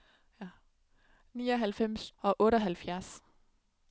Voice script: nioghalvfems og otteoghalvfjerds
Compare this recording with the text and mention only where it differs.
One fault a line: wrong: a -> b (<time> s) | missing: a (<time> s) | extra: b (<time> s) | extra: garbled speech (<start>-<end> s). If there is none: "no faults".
no faults